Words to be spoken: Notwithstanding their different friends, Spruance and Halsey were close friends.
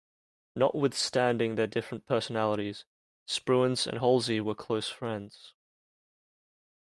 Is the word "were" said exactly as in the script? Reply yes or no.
yes